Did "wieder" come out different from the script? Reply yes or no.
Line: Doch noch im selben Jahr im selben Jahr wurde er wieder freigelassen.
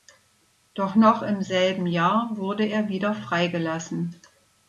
no